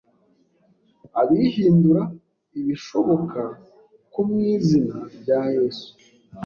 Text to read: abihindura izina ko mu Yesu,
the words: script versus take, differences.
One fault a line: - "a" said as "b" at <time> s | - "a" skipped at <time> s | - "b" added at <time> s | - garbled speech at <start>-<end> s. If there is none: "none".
- "izina" said as "ibishoboka" at 2.6 s
- "izina rya" added at 4.6 s